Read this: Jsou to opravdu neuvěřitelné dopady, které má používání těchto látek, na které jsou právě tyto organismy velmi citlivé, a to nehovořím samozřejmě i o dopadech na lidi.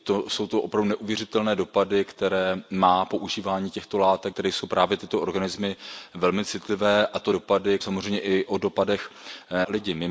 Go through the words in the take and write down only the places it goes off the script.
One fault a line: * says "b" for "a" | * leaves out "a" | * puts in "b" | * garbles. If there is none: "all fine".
* leaves out "na"
* says "dopady" for "nehovořím"
* leaves out "na"